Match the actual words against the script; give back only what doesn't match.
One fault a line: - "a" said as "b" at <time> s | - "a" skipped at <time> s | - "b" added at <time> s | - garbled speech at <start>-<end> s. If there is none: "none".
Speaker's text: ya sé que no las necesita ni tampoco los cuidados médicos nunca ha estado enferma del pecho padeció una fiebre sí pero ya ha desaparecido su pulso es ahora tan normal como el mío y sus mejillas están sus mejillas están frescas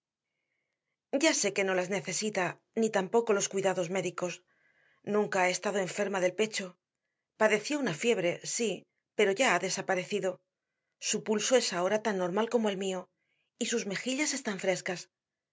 - "sus mejillas están" skipped at 14.6 s